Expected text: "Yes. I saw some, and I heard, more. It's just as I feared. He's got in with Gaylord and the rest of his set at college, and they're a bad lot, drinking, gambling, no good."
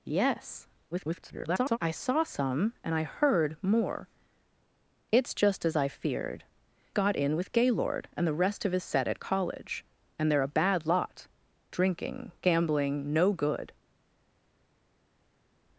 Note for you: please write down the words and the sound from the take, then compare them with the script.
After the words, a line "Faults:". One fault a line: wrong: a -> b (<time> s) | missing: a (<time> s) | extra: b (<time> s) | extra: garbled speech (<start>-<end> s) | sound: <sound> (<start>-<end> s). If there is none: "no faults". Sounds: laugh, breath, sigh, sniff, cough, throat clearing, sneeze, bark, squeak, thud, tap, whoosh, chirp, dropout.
"Yes. [garbled] I saw some, and I heard, more. It's just as I feared. Got in with Gaylord and the rest of his set at college, and they're a bad lot, drinking, gambling, no good."
Faults:
extra: garbled speech (0.9-1.8 s)
missing: He's (6.4 s)